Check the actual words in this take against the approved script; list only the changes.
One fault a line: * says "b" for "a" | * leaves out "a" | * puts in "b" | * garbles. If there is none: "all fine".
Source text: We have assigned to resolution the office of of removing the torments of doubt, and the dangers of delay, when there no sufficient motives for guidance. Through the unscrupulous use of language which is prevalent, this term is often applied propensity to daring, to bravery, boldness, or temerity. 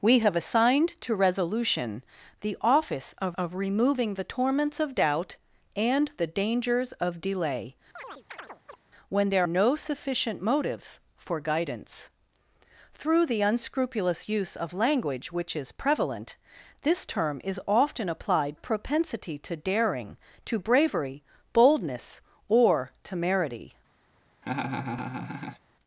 all fine